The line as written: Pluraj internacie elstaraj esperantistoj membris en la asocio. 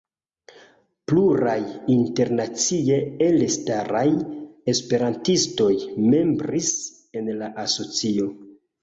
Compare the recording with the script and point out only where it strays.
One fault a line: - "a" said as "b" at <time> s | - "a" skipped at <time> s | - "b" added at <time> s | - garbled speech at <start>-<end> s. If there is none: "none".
none